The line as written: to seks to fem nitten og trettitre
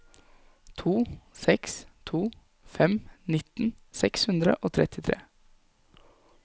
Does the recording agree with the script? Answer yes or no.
no